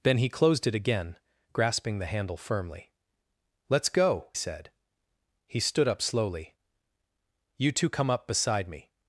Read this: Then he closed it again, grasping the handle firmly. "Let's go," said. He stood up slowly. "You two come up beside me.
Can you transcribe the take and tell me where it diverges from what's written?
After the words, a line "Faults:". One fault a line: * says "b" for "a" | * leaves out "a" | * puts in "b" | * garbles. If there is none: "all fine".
Then he closed it again, grasping the handle firmly. "Let's go," said. He stood up slowly. "You two come up beside me.
Faults:
all fine